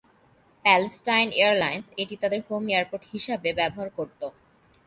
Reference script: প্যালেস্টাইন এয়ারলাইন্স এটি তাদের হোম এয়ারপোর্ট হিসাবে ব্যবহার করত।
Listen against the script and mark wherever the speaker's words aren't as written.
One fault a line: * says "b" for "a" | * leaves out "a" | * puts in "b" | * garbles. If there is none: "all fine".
all fine